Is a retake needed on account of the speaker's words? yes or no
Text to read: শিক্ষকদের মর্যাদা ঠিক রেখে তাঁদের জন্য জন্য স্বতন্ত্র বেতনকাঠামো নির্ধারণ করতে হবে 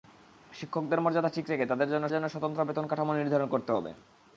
no